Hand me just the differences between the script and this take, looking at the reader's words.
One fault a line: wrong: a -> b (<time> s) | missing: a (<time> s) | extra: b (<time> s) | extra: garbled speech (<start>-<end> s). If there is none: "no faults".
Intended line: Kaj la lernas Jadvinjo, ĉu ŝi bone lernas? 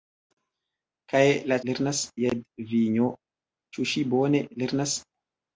no faults